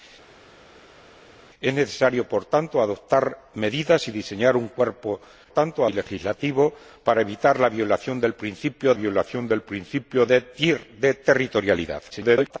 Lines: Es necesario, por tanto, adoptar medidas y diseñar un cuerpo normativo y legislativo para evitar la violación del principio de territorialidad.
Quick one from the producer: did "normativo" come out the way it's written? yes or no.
no